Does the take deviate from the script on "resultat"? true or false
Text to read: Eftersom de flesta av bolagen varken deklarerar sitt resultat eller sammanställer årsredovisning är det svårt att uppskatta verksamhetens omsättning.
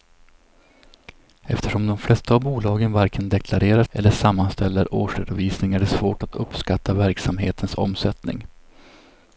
true